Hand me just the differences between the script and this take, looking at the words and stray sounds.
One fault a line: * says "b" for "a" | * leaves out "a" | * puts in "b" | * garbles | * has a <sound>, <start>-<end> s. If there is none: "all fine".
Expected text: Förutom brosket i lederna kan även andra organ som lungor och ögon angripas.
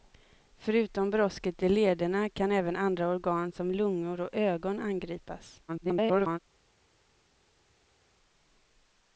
* garbles